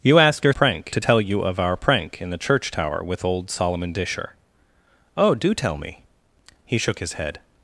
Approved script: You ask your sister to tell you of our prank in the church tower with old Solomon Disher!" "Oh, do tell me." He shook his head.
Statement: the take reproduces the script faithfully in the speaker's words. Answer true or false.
false